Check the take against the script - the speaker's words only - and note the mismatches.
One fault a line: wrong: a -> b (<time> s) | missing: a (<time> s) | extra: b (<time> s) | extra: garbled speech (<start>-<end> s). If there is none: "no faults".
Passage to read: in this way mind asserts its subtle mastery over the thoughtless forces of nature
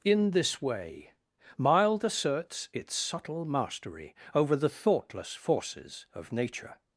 wrong: mind -> mild (1.6 s)